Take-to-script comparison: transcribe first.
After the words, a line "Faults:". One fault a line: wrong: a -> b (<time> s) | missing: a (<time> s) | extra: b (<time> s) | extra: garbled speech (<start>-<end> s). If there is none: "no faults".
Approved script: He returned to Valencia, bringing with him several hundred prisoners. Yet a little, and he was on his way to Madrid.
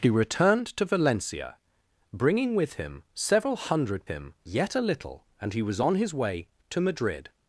He returned to Valencia, bringing with him several hundred him. Yet a little, and he was on his way to Madrid.
Faults:
wrong: prisoners -> him (4.0 s)